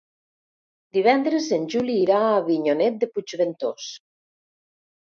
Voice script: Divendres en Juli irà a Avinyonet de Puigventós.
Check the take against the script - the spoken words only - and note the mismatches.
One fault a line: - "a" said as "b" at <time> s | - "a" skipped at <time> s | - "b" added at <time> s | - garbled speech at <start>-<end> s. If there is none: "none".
none